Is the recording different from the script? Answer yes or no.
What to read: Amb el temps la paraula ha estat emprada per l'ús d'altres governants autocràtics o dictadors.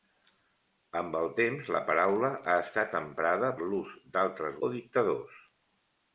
yes